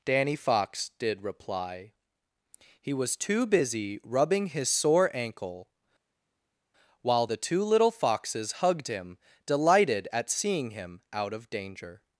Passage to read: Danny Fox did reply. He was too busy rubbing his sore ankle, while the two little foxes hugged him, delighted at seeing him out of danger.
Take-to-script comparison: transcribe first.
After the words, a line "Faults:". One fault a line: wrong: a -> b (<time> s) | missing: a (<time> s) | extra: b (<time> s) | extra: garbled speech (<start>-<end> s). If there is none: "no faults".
Danny Fox did reply. He was too busy rubbing his sore ankle, while the two little foxes hugged him, delighted at seeing him out of danger.
Faults:
no faults